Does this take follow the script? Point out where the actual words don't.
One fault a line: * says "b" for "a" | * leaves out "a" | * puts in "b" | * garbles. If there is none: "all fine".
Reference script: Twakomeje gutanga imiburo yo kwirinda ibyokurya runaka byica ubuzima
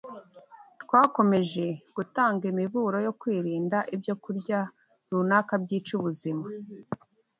all fine